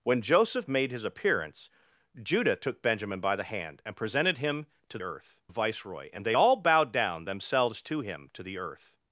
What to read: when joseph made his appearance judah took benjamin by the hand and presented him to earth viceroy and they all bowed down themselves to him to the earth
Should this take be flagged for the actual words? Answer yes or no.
no